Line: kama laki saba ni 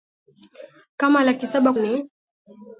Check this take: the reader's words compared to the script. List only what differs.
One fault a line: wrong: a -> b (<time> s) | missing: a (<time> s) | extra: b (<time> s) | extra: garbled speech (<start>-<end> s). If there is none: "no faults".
no faults